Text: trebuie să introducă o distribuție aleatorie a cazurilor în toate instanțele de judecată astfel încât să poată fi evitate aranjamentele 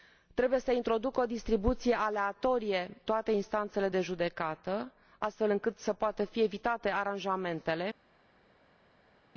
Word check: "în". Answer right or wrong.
wrong